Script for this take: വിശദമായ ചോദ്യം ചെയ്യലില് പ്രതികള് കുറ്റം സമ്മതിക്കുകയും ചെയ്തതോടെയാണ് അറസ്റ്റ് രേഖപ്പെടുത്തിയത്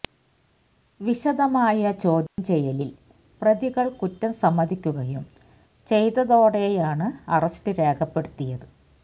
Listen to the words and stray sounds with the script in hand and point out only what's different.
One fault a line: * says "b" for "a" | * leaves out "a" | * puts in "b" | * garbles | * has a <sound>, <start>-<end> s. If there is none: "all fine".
* has a dropout, 2.3-2.4 s